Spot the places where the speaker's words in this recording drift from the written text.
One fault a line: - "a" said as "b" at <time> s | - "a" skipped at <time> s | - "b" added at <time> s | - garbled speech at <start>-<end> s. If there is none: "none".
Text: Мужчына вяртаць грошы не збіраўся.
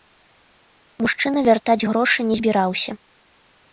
none